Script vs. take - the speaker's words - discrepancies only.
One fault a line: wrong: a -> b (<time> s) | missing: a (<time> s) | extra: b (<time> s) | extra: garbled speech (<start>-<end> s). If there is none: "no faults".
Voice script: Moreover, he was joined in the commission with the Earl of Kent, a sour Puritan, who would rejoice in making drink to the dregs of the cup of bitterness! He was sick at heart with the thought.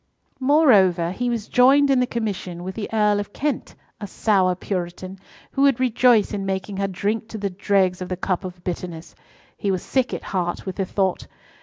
extra: her (6.8 s)